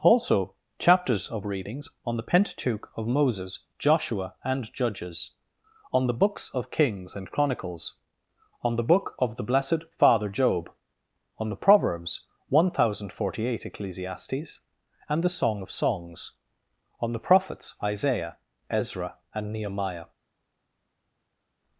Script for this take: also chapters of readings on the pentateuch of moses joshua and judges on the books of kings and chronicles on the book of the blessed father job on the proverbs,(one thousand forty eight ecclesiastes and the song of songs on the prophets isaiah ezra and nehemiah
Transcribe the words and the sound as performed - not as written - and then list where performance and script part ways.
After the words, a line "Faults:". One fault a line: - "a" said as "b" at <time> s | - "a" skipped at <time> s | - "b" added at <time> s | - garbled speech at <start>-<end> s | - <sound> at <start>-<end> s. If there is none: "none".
also chapters of readings on the pentateuch of moses joshua and judges on the books of kings and chronicles on the book of the blessed father job on the proverbs,(one thousand forty eight ecclesiastes and the song of songs on the prophets isaiah ezra and nehemiah
Faults:
none